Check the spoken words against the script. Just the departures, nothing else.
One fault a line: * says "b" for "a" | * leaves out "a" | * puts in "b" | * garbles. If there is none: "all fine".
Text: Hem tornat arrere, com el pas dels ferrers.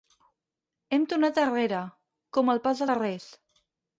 * leaves out "dels"